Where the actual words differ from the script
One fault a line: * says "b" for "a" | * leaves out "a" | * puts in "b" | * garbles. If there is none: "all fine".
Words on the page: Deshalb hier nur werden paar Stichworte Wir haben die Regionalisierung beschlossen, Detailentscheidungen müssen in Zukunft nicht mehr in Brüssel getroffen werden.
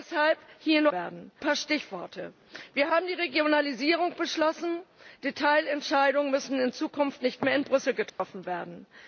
all fine